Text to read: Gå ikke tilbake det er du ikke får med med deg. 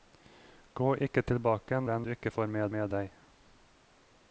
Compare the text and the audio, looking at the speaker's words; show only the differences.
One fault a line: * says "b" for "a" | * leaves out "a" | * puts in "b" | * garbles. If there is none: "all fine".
all fine